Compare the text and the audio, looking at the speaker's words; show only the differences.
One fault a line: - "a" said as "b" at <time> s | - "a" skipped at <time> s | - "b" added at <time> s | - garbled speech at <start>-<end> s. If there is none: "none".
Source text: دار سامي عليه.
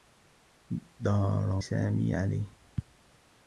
none